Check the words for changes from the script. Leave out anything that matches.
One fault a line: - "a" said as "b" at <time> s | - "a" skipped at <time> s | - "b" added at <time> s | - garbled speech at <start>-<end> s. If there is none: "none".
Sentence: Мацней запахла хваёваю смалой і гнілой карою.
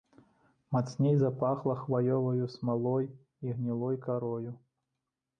none